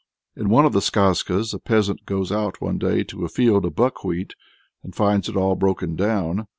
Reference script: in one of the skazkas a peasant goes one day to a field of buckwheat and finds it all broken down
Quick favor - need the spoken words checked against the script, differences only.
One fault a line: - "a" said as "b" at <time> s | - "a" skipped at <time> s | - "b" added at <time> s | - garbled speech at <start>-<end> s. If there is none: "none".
- "out" added at 2.3 s